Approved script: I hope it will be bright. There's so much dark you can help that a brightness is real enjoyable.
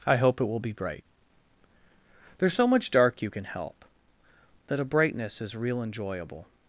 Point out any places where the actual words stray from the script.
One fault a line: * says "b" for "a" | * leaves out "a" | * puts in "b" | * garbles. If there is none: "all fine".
all fine